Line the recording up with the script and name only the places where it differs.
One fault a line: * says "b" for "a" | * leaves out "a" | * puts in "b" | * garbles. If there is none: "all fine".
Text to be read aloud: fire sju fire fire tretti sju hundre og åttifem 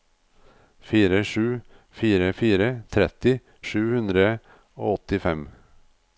all fine